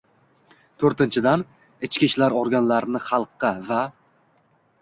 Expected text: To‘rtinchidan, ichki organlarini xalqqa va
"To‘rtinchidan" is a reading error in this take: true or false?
false